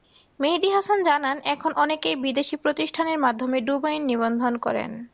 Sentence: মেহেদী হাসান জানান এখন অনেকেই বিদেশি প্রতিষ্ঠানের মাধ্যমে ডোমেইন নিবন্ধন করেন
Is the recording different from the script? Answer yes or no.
no